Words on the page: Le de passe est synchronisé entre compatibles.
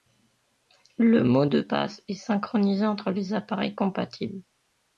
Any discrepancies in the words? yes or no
yes